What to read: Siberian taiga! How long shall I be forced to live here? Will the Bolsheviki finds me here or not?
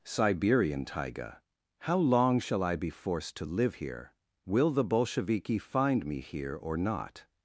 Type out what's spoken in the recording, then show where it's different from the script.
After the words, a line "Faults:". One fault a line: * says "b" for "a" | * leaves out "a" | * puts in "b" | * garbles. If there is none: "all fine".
Siberian taiga! How long shall I be forced to live here? Will the Bolsheviki find me here or not?
Faults:
* says "find" for "finds"